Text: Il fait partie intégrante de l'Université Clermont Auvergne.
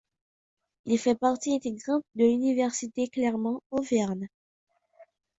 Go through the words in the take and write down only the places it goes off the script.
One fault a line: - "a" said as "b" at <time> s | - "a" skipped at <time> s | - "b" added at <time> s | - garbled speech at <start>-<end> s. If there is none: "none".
none